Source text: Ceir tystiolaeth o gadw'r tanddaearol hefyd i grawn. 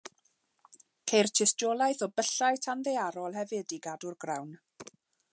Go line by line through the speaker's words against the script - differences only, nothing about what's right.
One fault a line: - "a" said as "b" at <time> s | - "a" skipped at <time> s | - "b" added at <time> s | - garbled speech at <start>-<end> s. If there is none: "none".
- "gadw'r" said as "byllau" at 2.2 s
- "gadw'r" added at 3.9 s